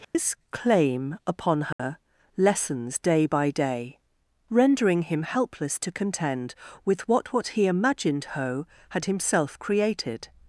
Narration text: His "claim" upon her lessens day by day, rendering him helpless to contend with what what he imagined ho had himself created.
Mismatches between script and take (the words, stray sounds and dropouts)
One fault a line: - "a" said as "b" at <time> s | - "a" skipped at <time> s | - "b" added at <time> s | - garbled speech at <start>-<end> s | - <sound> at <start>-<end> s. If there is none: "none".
- dropout at 0.0-0.1 s
- dropout at 1.7-1.8 s